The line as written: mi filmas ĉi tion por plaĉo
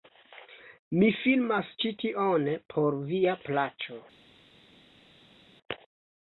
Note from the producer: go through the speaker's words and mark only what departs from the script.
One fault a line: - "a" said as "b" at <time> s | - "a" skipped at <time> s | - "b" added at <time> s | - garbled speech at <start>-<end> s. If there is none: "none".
- "via" added at 3.1 s